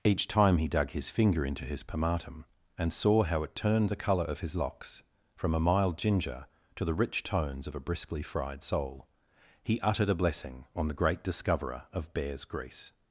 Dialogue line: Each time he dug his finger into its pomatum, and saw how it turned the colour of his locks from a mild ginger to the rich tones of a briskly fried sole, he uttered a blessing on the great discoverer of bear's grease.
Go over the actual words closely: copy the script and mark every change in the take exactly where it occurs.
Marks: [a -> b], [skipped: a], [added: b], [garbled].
Each time he dug his finger into [its -> his] pomatum, and saw how it turned the colour of his locks from a mild ginger to the rich tones of a briskly fried sole, he uttered a blessing on the great discoverer of bear's grease.